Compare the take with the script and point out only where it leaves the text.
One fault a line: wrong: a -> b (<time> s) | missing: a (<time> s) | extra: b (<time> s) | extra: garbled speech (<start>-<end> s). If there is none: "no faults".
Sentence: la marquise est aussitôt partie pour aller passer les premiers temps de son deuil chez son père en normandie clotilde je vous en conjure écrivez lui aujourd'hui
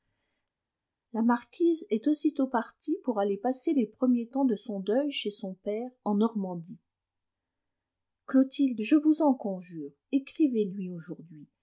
no faults